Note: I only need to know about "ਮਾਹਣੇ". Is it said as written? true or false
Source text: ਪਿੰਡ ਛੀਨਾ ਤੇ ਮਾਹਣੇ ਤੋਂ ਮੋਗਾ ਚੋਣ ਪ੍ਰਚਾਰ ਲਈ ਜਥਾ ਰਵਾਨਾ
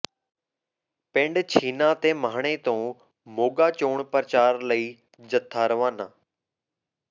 true